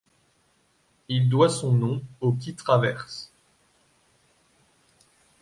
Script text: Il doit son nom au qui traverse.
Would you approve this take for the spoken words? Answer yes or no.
yes